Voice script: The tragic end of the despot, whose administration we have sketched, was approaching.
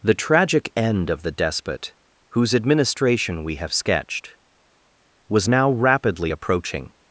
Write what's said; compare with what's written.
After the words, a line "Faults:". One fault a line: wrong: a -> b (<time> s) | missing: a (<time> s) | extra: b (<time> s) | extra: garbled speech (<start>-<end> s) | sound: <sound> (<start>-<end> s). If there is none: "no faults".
The tragic end of the despot, whose administration we have sketched, was now rapidly approaching.
Faults:
extra: now rapidly (5.5 s)